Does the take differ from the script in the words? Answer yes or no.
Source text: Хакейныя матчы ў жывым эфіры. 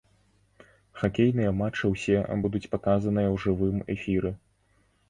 yes